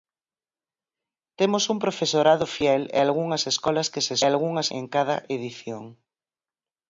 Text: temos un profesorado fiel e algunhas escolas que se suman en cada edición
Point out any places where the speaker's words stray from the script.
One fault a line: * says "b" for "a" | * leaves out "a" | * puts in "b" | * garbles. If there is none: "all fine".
* says "algunhas" for "suman"